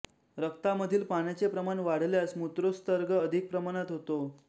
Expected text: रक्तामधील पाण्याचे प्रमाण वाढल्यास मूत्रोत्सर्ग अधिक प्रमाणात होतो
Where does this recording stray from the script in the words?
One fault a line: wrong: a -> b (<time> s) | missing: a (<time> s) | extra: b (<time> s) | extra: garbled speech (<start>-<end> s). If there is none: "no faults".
no faults